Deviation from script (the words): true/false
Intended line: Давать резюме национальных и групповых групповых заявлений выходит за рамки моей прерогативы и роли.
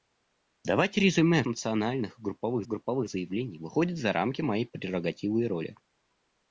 false